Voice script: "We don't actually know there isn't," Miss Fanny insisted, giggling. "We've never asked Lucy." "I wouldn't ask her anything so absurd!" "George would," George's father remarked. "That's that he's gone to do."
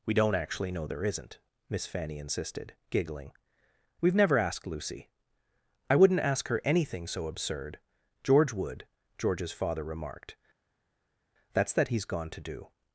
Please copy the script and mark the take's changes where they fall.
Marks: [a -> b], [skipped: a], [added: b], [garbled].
"We don't actually know there isn't," Miss Fanny insisted, giggling. "We've never asked Lucy." "I wouldn't ask her anything so absurd!" "George would," George's father remarked. "That's that he's gone to do."